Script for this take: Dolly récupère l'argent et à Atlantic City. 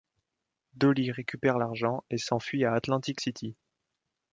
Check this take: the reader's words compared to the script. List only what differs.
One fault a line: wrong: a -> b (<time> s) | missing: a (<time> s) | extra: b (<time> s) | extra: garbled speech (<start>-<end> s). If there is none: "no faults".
extra: s'enfuit (2.2 s)